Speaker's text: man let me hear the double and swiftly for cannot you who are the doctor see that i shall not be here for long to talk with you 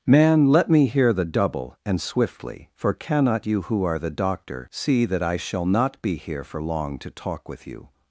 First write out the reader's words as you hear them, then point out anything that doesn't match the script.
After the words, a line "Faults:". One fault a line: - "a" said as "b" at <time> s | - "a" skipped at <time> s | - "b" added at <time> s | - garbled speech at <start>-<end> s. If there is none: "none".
man let me hear the double and swiftly for cannot you who are the doctor see that i shall not be here for long to talk with you
Faults:
none